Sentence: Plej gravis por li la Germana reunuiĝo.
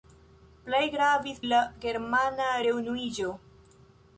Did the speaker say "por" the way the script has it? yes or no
no